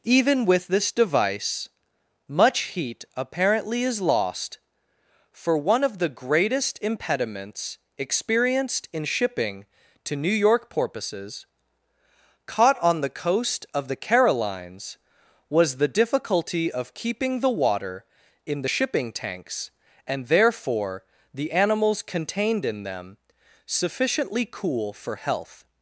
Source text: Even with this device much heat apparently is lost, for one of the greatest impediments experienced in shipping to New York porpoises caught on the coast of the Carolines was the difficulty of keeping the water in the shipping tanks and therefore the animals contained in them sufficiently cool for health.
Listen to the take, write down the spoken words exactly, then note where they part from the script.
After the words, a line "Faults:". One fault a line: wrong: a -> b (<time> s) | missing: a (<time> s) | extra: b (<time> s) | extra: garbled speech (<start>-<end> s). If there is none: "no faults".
Even with this device much heat apparently is lost, for one of the greatest impediments experienced in shipping to New York porpoises caught on the coast of the Carolines was the difficulty of keeping the water in the shipping tanks and therefore the animals contained in them sufficiently cool for health.
Faults:
no faults